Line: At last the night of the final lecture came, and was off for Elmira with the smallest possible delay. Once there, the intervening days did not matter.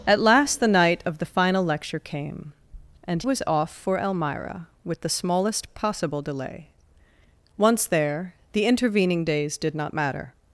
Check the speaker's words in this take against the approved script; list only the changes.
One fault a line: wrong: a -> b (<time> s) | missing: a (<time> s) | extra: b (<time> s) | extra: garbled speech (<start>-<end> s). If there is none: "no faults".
no faults